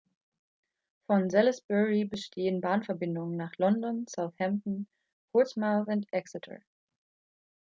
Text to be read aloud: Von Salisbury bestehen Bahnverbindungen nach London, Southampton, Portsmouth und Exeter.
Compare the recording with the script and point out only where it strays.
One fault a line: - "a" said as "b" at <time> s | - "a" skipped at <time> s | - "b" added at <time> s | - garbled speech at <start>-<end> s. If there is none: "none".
none